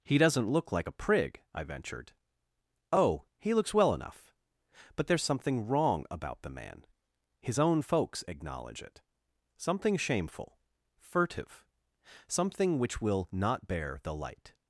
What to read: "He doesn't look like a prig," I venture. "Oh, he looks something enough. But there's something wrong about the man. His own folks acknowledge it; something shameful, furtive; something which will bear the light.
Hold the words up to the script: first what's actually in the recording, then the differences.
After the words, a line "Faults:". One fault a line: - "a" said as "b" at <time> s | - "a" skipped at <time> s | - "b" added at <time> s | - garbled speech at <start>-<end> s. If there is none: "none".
"He doesn't look like a prig," I ventured. "Oh, he looks well enough. But there's something wrong about the man. His own folks acknowledge it; something shameful, furtive; something which will not bear the light.
Faults:
- "venture" said as "ventured" at 1.6 s
- "something" said as "well" at 3.7 s
- "not" added at 13.3 s